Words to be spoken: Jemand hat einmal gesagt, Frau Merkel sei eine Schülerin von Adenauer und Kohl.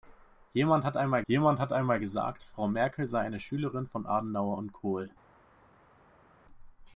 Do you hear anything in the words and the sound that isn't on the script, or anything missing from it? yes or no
yes